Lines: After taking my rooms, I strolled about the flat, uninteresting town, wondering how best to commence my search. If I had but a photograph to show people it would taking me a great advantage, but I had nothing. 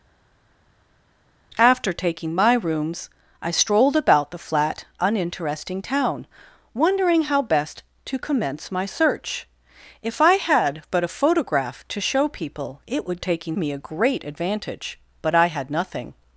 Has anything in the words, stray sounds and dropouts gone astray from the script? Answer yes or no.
no